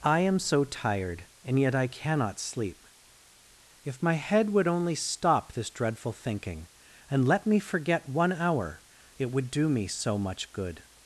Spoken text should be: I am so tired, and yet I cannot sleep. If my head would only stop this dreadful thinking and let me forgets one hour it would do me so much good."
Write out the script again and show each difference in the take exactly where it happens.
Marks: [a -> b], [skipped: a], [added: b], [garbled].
I am so tired, and yet I cannot sleep. If my head would only stop this dreadful thinking and let me [forgets -> forget] one hour it would do me so much good."